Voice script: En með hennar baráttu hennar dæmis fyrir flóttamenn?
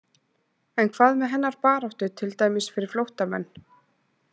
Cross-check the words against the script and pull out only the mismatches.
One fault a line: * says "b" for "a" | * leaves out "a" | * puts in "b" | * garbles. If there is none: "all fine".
* puts in "hvað"
* says "til" for "hennar"